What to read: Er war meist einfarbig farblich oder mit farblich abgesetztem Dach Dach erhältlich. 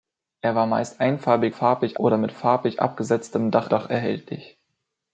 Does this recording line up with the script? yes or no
yes